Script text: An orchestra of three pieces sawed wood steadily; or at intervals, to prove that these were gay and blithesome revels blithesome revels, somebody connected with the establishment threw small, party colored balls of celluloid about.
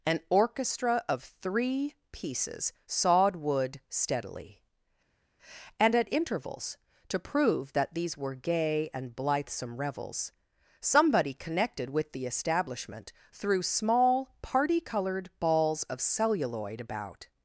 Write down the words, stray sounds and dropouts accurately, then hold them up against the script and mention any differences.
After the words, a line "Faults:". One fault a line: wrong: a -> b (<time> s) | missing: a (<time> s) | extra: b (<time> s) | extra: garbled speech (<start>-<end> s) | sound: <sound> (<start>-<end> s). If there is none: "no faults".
An orchestra of three pieces sawed wood steadily; and at intervals, to prove that these were gay and blithesome revels, somebody connected with the establishment threw small, party colored balls of celluloid about.
Faults:
wrong: or -> and (5.8 s)
missing: blithesome revels (10.3 s)